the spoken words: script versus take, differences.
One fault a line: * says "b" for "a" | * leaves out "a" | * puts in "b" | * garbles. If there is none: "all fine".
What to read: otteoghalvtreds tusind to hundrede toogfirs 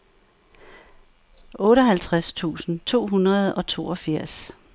* puts in "og"